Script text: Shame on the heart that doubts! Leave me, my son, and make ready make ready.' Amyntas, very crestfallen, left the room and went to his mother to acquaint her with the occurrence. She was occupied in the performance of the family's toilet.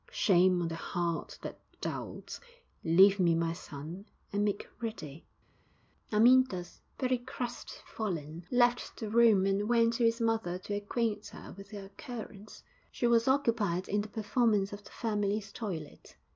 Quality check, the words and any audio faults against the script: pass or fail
fail